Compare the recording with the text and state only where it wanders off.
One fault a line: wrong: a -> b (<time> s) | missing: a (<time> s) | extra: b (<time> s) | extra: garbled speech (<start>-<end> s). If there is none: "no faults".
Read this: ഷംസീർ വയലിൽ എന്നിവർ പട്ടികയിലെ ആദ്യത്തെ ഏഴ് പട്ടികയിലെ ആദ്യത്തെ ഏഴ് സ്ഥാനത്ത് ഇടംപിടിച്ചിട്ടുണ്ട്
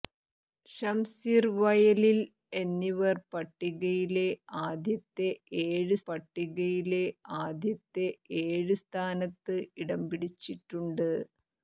no faults